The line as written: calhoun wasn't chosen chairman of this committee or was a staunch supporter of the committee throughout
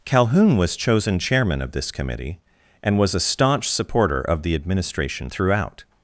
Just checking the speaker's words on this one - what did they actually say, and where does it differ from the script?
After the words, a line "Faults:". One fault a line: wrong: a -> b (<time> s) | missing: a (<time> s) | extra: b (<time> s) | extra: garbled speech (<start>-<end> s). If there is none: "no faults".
calhoun was chosen chairman of this committee and was a staunch supporter of the administration throughout
Faults:
wrong: wasn't -> was (0.6 s)
wrong: or -> and (2.8 s)
wrong: committee -> administration (4.5 s)